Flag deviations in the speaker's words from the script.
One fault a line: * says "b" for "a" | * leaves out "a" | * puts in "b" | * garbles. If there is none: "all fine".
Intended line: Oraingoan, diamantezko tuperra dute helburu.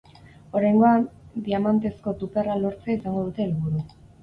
* puts in "lortzea izango"